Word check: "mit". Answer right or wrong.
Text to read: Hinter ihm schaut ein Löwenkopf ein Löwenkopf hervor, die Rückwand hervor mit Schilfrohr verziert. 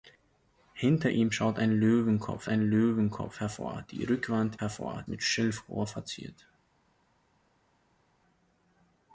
right